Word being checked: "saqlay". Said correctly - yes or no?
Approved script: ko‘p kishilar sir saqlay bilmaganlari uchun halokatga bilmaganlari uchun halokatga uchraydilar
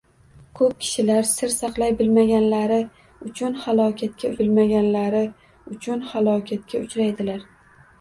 yes